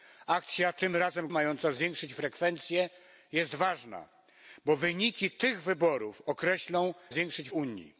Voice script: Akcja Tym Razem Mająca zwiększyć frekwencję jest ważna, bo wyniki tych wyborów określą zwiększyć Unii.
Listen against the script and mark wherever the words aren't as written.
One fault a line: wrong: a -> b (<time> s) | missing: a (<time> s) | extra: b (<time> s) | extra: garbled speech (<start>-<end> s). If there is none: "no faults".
no faults